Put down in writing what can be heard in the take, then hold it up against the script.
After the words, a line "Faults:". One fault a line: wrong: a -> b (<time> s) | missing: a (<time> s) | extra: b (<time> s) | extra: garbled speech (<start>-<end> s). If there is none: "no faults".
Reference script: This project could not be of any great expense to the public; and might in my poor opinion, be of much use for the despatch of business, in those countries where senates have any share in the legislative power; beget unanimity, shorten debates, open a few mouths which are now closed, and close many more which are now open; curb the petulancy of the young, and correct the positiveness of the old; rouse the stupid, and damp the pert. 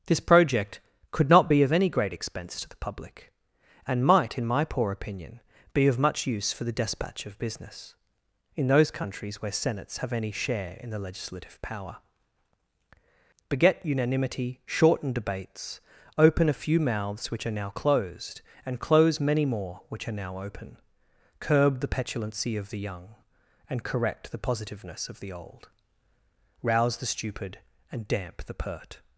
This project could not be of any great expense to the public; and might in my poor opinion, be of much use for the despatch of business, in those countries where senates have any share in the legislative power; beget unanimity, shorten debates, open a few mouths which are now closed, and close many more which are now open; curb the petulancy of the young, and correct the positiveness of the old; rouse the stupid, and damp the pert.
Faults:
no faults